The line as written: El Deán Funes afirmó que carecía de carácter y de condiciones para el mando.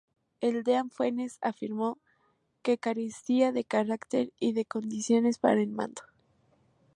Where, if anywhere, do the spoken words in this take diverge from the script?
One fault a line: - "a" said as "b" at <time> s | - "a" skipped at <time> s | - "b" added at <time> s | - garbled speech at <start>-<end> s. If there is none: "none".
none